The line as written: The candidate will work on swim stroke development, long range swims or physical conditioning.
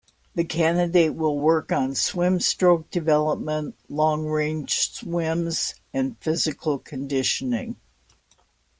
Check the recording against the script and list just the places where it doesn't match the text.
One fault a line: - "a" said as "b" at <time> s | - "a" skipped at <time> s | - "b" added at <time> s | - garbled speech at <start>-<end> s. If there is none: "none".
- "or" said as "and" at 5.9 s